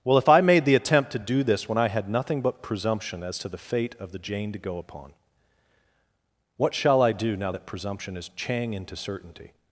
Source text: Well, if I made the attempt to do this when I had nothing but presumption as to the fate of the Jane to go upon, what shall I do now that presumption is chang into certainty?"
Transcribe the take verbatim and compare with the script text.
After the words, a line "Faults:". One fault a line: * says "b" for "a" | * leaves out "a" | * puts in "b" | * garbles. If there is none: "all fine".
Well, if I made the attempt to do this when I had nothing but presumption as to the fate of the Jane to go upon, what shall I do now that presumption is chang into certainty?"
Faults:
all fine